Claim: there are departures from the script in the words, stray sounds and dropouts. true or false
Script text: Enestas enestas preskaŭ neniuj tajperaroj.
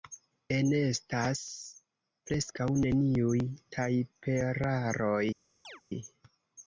true